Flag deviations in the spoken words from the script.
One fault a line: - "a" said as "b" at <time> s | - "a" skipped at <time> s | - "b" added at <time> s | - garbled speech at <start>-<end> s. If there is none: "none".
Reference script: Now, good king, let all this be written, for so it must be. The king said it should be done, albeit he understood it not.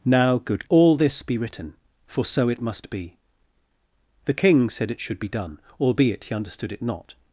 - "king let" skipped at 0.7 s